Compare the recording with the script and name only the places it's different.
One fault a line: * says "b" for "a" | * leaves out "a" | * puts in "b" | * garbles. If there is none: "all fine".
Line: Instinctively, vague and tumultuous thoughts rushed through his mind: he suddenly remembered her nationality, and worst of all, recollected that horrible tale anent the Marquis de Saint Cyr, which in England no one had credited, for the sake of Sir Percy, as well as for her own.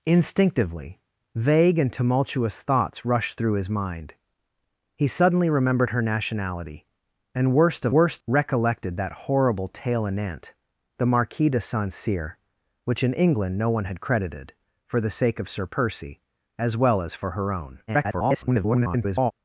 * says "worst" for "all"
* garbles